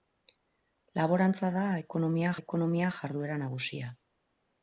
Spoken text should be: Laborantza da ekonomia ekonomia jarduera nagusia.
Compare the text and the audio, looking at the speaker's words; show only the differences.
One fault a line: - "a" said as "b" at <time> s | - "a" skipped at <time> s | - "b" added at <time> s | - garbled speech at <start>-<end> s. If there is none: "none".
none